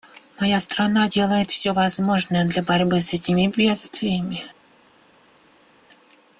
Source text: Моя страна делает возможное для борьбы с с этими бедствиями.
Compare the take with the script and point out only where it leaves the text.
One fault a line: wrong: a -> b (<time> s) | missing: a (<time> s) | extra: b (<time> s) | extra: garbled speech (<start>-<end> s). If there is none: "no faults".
extra: все (1.5 s)
missing: с (3.1 s)